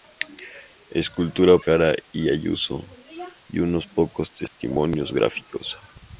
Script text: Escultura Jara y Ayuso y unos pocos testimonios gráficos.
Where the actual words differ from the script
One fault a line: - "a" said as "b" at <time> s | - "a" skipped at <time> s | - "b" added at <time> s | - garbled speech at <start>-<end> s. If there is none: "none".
none